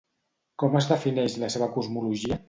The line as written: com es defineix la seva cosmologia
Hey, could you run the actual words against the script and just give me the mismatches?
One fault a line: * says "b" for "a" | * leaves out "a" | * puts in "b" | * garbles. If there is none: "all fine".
all fine